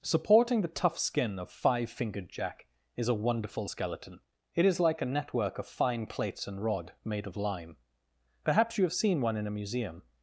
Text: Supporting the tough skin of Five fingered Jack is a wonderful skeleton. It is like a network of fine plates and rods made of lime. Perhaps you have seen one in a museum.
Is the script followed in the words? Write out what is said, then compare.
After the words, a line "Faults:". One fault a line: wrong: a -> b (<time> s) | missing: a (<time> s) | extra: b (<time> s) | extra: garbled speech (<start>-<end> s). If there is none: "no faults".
Supporting the tough skin of Five fingered Jack is a wonderful skeleton. It is like a network of fine plates and rod made of lime. Perhaps you have seen one in a museum.
Faults:
wrong: rods -> rod (6.6 s)